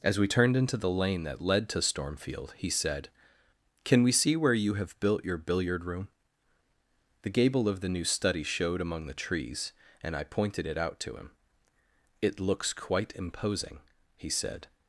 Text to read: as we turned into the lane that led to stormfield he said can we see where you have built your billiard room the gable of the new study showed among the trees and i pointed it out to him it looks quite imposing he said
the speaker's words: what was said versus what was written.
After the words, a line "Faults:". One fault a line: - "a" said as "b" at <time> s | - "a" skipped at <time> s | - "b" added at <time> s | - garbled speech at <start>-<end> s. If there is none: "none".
as we turned into the lane that led to stormfield he said can we see where you have built your billiard room the gable of the new study showed among the trees and i pointed it out to him it looks quite imposing he said
Faults:
none